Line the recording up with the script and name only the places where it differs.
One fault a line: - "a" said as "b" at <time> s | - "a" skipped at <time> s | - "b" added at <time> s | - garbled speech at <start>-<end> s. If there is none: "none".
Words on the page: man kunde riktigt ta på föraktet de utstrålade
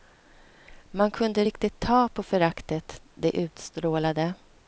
none